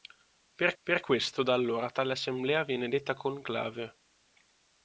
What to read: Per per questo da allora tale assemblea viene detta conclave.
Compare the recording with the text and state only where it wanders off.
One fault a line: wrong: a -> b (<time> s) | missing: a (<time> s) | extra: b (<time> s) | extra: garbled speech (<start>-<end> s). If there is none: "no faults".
no faults